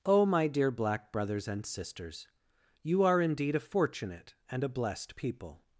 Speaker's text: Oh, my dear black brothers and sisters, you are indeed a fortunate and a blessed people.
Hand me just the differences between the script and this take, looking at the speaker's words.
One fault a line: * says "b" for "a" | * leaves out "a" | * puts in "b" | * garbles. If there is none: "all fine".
all fine